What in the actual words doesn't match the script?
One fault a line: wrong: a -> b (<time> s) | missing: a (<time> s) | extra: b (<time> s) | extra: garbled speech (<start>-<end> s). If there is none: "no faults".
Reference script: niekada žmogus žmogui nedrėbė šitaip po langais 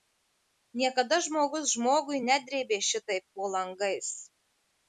no faults